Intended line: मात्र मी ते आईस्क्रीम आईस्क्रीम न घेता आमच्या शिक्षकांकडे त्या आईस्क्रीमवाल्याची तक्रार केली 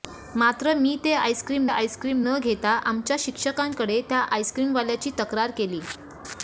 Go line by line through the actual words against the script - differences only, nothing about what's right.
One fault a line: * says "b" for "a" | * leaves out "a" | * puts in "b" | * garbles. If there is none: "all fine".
all fine